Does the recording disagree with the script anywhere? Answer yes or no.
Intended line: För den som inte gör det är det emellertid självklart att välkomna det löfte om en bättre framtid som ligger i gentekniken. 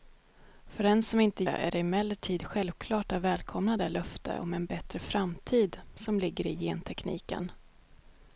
yes